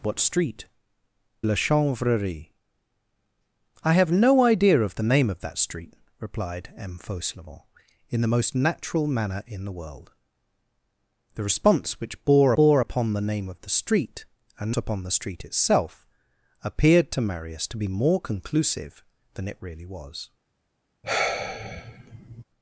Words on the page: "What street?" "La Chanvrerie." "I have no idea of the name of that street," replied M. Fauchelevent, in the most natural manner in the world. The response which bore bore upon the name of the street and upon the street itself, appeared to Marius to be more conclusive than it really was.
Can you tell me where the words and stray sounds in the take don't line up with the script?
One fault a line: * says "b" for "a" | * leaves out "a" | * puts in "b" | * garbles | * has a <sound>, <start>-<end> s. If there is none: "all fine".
* has a sigh, 21.0-22.4 s